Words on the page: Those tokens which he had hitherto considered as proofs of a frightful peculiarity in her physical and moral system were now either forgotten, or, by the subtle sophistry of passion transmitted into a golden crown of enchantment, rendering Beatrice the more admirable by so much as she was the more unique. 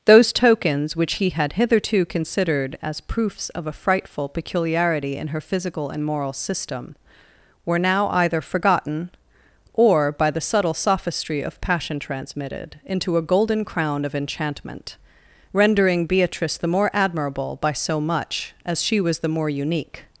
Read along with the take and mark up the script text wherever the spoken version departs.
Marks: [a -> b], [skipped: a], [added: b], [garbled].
Those tokens which he had hitherto considered as proofs of a frightful peculiarity in her physical and moral system were now either forgotten, or, by the subtle sophistry of passion transmitted into a golden crown of enchantment, rendering Beatrice the more admirable by so much as she was the more unique.